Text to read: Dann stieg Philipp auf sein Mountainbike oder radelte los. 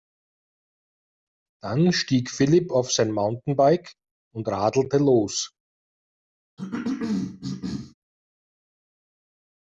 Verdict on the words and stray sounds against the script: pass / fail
fail